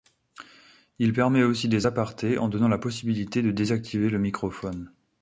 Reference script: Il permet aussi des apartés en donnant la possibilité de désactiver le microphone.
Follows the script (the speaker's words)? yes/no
yes